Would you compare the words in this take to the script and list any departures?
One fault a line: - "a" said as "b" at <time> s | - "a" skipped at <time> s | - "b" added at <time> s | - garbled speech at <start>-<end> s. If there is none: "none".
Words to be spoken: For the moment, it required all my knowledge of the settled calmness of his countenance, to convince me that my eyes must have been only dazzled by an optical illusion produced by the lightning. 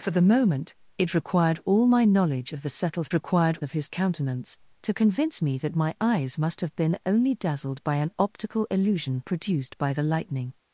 - "calmness" said as "required" at 3.1 s